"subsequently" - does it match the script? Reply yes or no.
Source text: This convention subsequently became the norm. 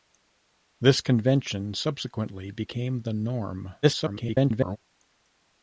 yes